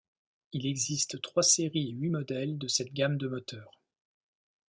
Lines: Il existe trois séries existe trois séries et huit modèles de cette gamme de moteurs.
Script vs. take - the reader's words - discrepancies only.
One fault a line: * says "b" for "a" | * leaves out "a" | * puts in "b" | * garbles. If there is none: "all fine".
* leaves out "existe trois séries"